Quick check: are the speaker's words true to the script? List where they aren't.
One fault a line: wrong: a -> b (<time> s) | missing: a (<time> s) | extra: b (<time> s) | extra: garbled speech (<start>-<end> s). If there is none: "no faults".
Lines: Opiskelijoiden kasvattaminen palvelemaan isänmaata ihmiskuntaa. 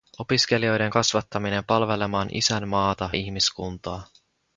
no faults